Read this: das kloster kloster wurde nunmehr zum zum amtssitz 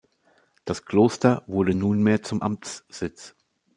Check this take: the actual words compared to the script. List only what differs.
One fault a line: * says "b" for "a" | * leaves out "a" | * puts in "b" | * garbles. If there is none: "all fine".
* leaves out "kloster"
* leaves out "zum"